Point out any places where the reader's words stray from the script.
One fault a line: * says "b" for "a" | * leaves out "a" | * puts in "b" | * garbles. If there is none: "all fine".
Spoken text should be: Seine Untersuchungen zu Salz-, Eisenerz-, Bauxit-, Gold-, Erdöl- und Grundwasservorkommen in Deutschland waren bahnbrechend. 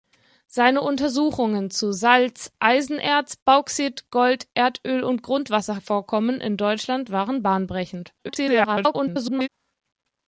* garbles